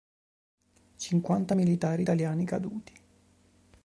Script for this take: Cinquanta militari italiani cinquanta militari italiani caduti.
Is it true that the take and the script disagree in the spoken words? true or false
true